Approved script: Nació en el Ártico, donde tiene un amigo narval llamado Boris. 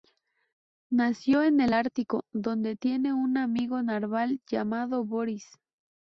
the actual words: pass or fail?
pass